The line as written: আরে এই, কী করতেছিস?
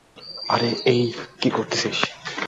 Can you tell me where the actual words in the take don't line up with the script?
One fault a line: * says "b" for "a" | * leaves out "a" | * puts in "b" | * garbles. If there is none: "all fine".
all fine